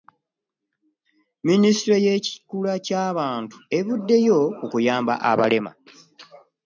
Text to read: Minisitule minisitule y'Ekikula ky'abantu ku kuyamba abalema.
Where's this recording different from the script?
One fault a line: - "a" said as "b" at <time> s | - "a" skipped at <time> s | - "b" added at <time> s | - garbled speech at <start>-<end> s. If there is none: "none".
- "minisitule" skipped at 2.0 s
- "evuddeyo" added at 3.8 s